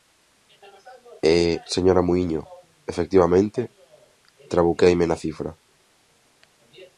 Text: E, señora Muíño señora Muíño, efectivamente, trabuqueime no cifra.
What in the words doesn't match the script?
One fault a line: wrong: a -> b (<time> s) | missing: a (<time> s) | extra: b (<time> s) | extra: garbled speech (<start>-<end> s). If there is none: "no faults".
missing: señora Muíño (2.4 s)
wrong: no -> na (5.1 s)